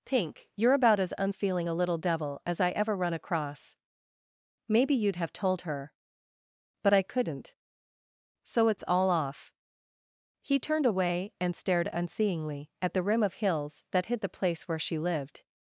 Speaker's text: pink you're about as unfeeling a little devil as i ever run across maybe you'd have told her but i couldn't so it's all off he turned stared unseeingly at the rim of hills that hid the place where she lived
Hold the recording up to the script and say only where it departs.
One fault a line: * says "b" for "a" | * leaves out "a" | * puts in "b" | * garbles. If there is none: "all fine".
* puts in "away and"